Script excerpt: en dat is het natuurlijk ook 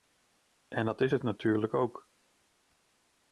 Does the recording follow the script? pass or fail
pass